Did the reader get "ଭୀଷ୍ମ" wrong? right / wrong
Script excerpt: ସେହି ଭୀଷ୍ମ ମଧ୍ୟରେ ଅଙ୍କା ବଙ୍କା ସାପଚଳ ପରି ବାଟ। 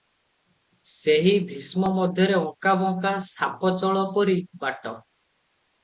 right